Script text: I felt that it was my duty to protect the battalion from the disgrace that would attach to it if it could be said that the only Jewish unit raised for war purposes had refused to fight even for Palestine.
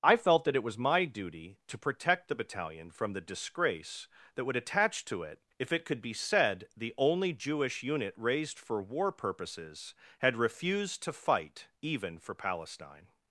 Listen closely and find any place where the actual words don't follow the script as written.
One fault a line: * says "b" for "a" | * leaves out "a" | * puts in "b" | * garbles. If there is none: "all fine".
* leaves out "that"